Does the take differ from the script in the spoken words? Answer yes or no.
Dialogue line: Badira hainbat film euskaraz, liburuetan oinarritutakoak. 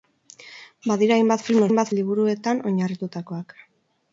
yes